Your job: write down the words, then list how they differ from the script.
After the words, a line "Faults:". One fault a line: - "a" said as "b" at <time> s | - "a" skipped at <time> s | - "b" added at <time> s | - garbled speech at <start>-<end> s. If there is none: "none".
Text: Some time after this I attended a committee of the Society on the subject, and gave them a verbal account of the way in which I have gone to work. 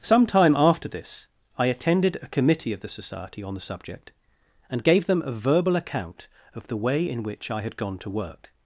Some time after this I attended a committee of the Society on the subject, and gave them a verbal account of the way in which I had gone to work.
Faults:
- "have" said as "had" at 7.6 s